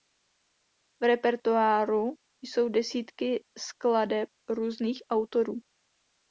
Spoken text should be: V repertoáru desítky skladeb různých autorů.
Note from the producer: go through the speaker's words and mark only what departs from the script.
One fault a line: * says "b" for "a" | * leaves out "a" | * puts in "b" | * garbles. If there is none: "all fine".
* puts in "jsou"